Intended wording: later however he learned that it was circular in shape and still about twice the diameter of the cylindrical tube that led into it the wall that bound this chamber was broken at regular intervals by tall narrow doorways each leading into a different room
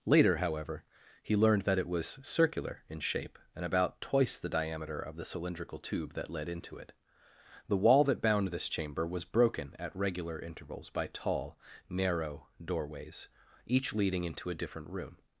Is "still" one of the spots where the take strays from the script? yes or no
yes